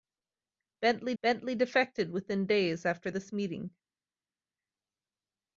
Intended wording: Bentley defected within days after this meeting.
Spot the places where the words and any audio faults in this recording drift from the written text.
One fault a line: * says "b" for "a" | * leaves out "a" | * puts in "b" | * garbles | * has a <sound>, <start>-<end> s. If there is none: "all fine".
* puts in "bentley"